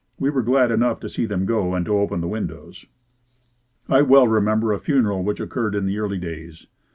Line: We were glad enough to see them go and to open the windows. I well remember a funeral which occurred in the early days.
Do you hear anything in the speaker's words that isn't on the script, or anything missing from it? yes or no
no